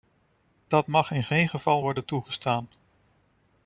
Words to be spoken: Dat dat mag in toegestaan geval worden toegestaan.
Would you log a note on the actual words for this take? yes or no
yes